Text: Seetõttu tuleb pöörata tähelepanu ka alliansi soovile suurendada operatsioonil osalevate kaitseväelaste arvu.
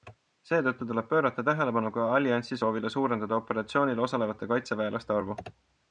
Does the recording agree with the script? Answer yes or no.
yes